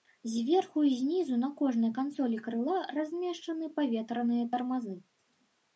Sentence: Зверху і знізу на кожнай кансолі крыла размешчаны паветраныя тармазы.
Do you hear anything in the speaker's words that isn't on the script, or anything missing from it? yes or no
no